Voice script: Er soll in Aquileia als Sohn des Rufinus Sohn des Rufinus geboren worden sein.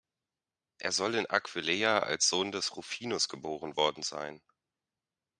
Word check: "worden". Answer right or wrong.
right